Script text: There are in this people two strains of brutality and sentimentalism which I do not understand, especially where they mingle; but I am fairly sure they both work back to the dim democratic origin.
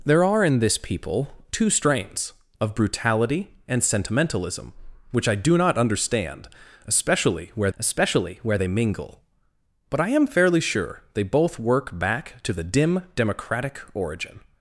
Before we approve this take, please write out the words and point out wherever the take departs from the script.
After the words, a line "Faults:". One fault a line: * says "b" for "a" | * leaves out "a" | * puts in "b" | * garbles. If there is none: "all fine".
There are in this people two strains of brutality and sentimentalism which I do not understand, especially where especially where they mingle; but I am fairly sure they both work back to the dim democratic origin.
Faults:
* puts in "especially where"